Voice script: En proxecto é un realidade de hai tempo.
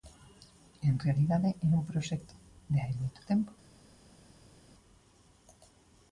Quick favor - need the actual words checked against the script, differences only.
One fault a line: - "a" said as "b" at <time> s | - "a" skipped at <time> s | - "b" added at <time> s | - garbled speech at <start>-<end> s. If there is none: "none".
- "proxecto" said as "realidade" at 1.1 s
- "realidade" said as "proxecto" at 1.9 s
- "moito" added at 3.0 s